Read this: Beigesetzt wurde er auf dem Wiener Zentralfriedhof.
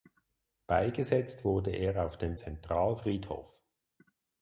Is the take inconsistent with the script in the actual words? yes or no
yes